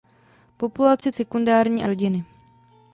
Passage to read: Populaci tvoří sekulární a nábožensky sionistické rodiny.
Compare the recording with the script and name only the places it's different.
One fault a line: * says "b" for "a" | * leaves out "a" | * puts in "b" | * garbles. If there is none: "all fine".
* leaves out "tvoří"
* leaves out "nábožensky sionistické"